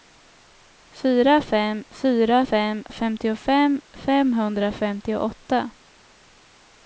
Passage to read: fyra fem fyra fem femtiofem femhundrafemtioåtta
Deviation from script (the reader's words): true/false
false